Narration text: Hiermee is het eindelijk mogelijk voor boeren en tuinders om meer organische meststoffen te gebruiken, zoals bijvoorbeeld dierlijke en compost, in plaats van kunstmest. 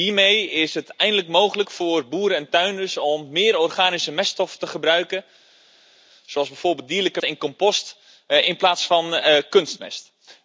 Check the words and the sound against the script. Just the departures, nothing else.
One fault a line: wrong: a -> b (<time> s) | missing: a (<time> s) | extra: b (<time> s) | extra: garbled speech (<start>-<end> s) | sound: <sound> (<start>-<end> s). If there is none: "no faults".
no faults